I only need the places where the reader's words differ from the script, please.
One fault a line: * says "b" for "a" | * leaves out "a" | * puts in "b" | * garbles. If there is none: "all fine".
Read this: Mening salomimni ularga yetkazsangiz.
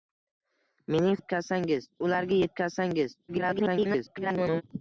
* says "yetkazsangiz" for "salomimni"
* garbles